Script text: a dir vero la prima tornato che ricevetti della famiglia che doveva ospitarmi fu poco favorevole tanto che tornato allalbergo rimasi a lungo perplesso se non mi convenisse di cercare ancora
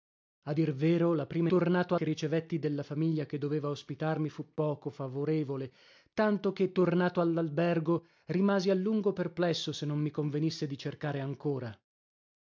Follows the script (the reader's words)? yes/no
yes